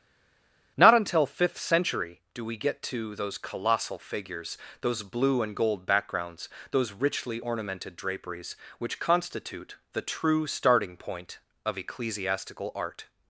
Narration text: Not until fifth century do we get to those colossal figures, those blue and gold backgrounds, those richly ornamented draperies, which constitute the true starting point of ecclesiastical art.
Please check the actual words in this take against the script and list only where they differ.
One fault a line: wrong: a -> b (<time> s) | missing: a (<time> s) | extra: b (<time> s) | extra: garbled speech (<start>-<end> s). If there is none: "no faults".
no faults